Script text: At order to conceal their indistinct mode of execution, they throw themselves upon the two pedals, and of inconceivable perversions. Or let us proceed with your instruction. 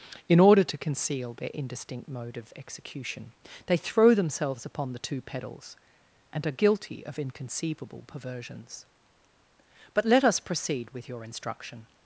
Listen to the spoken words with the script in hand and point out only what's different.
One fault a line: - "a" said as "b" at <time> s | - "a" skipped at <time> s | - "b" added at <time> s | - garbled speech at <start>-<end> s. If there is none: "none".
- "At" said as "In" at 0.3 s
- "are guilty" added at 6.5 s
- "Or" said as "But" at 9.9 s